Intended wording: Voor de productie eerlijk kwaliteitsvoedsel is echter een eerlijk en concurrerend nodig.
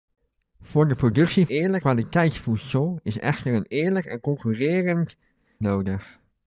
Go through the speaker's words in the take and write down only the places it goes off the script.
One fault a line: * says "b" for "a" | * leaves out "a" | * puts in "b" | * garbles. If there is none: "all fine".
all fine